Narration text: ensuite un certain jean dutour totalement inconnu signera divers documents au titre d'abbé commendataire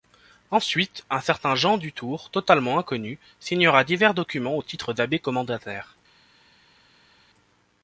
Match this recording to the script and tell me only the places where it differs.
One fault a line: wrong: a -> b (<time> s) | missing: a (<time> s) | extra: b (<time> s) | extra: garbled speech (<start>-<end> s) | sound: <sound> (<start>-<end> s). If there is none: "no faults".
no faults